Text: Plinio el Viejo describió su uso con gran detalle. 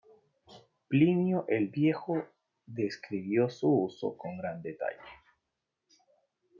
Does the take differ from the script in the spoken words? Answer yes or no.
no